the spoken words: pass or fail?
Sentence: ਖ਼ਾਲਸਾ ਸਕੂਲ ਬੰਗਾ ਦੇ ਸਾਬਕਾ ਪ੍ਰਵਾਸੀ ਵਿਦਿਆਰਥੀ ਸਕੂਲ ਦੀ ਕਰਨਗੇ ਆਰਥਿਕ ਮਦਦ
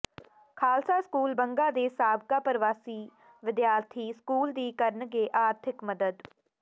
pass